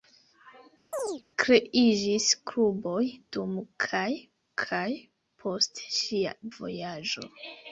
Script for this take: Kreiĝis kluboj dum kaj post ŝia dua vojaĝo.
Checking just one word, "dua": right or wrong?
wrong